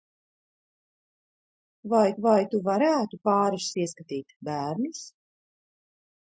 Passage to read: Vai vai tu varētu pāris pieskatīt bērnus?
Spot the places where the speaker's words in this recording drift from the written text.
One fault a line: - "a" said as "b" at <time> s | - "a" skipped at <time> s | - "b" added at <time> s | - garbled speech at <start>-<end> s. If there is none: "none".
none